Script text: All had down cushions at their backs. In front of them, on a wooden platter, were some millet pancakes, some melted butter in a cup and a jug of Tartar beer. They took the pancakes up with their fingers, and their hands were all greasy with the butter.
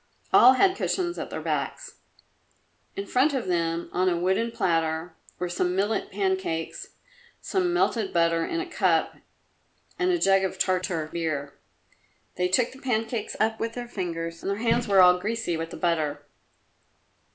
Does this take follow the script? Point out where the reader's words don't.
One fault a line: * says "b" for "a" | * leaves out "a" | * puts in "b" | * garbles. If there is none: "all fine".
* leaves out "down"